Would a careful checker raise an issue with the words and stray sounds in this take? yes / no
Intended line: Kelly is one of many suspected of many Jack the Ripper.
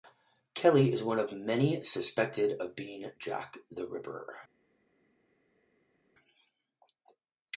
yes